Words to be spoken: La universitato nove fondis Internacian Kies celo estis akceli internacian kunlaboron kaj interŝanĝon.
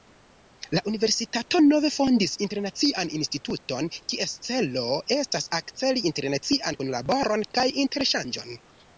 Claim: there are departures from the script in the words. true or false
true